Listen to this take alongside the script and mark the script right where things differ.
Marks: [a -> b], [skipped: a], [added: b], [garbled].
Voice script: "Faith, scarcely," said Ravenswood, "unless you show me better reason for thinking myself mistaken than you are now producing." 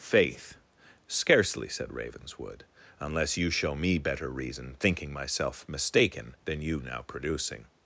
"Faith, scarcely," said Ravenswood, "unless you show me better reason [skipped: for] thinking myself mistaken than you [skipped: are] now producing."